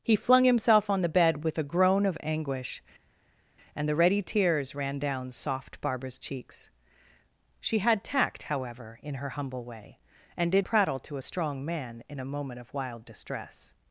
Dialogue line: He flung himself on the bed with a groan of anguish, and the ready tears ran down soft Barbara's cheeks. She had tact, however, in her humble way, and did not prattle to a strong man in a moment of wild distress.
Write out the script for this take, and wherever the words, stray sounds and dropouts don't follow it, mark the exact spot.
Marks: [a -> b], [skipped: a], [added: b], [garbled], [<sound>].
He flung himself on the bed with a groan of anguish, and the ready tears ran down soft Barbara's cheeks. She had tact, however, in her humble way, and did [skipped: not] prattle to a strong man in a moment of wild distress.